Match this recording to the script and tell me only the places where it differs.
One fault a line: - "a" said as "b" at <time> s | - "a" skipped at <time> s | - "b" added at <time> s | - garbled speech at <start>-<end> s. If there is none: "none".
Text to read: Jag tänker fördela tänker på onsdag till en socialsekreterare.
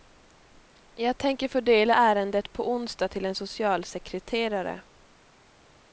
- "tänker" said as "ärendet" at 1.9 s